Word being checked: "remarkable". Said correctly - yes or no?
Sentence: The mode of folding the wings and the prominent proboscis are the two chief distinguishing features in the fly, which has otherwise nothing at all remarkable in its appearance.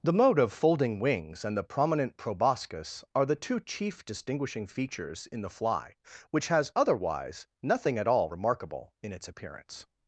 yes